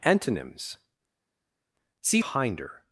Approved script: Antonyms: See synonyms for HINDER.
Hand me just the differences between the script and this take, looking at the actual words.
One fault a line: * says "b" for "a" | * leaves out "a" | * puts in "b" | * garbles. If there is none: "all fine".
* leaves out "synonyms for"